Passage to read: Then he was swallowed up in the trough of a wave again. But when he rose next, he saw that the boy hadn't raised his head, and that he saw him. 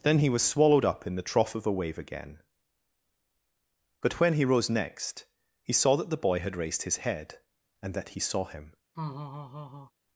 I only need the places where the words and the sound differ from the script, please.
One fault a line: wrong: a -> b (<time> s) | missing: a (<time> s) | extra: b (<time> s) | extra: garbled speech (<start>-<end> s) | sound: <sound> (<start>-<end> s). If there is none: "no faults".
wrong: hadn't -> had (6.4 s)
sound: laugh (8.9-9.9 s)